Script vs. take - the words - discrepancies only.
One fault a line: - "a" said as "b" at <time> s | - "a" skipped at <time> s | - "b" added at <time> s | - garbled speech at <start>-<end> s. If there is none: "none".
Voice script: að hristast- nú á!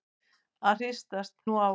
none